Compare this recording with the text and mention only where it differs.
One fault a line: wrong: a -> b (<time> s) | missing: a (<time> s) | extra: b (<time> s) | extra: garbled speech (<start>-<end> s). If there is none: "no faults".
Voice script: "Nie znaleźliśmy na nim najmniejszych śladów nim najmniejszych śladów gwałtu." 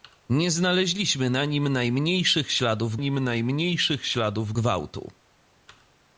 no faults